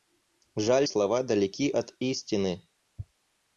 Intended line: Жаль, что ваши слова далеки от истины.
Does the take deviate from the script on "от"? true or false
false